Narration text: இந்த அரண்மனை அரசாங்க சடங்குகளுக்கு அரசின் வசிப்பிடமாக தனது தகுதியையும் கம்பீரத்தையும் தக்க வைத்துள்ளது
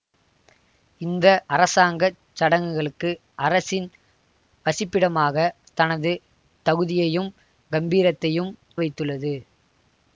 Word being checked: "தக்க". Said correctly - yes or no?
no